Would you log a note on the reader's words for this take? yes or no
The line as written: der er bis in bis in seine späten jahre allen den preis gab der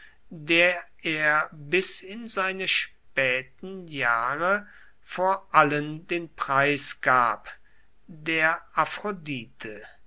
yes